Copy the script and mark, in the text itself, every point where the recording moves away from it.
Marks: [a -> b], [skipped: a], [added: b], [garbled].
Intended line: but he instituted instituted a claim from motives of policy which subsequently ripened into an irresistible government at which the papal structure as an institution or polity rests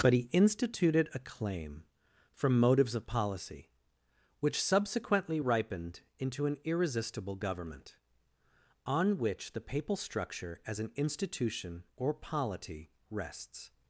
but he instituted [skipped: instituted] a claim from motives of policy which subsequently ripened into an irresistible government [at -> on] which the papal structure as an institution or polity rests